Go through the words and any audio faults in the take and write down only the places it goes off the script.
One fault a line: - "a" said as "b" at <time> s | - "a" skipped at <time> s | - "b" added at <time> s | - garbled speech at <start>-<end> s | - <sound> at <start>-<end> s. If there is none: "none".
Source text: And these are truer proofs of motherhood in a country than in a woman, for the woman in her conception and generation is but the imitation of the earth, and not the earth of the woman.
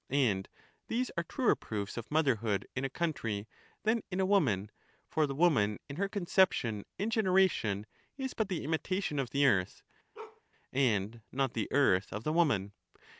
- bark at 10.1-10.4 s